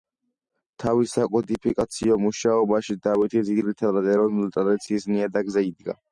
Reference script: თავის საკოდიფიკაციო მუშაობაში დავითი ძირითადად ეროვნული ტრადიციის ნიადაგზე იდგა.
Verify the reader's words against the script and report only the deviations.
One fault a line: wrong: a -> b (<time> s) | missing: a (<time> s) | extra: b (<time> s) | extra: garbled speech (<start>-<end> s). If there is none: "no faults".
no faults